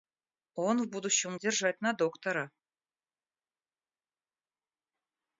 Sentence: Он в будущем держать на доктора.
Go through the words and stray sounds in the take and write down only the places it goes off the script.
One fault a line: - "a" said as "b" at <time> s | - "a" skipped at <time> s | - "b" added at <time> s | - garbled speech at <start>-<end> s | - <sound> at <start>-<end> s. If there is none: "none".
none